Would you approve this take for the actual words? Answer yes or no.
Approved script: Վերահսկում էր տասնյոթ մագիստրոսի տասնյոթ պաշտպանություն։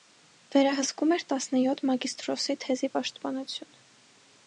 no